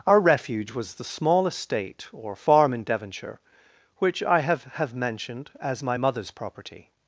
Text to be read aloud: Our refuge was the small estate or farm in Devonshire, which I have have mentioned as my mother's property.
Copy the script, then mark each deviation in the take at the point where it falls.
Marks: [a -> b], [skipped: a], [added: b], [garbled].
Our refuge was the small estate or farm in Devonshire, which I have have mentioned as my mother's property.